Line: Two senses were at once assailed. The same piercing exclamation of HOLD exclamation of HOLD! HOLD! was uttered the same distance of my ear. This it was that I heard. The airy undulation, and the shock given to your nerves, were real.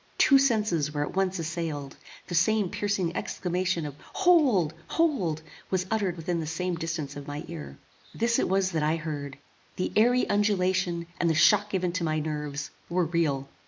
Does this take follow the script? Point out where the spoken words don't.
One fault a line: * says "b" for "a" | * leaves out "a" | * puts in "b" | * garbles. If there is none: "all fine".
* leaves out "exclamation of"
* leaves out "HOLD"
* puts in "within"
* says "my" for "your"